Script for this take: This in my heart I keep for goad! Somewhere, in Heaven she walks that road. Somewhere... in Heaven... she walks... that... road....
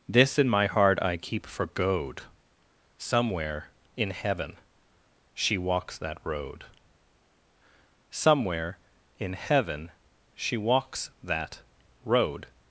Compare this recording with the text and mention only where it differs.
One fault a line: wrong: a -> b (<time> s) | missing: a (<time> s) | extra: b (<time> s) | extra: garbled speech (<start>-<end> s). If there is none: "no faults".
no faults